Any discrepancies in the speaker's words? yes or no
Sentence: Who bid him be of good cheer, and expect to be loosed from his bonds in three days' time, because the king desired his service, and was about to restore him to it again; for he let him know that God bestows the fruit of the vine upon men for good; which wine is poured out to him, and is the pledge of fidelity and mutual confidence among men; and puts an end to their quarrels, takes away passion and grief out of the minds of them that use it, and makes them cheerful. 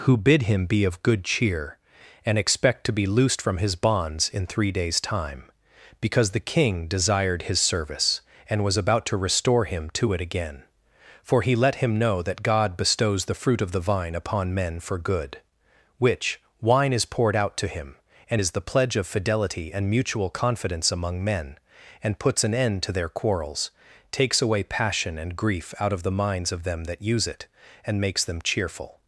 no